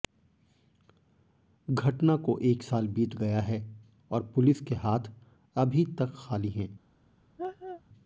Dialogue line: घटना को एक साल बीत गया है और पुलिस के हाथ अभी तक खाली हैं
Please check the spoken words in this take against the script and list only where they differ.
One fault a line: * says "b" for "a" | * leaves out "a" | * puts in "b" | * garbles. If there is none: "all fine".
all fine